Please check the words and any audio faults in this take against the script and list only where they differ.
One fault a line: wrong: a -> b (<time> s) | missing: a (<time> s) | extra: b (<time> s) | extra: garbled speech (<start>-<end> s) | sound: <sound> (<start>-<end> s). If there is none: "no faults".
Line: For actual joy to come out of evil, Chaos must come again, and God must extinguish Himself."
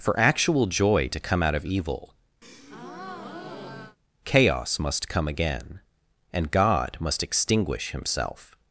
sound: breath (2.4-4.0 s)